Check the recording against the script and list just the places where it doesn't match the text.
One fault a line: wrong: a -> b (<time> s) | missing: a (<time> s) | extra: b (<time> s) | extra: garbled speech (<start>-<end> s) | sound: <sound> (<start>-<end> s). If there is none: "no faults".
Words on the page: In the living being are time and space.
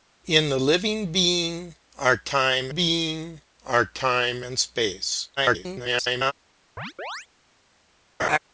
extra: being are time (2.7 s)
extra: garbled speech (5.4-6.3 s)
sound: chirp (6.8-7.3 s)
sound: laugh (8.2-8.4 s)